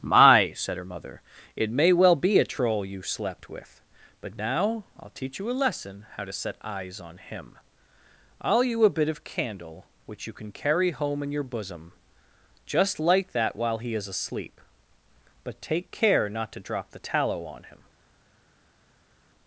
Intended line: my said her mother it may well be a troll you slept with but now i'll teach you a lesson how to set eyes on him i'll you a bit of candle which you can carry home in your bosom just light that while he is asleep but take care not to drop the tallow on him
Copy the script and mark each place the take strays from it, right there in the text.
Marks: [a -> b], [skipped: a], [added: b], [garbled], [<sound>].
my said her mother it may well be a troll you slept with but now i'll teach you a lesson how to set eyes on him i'll you a bit of candle which you can carry home in your bosom just light that while he is asleep but take care not to drop the tallow on him